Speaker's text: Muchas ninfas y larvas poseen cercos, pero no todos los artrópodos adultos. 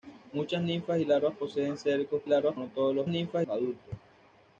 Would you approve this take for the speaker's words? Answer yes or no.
no